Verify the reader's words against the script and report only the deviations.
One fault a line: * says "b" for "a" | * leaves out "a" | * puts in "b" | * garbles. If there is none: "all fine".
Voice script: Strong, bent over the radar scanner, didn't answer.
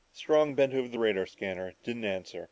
all fine